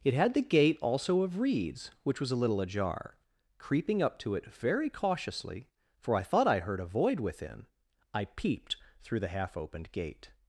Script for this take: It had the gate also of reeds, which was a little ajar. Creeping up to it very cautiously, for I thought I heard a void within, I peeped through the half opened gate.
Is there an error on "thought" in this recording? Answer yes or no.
no